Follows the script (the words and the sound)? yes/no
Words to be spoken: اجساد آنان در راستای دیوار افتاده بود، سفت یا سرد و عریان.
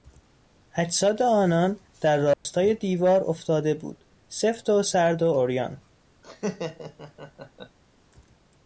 no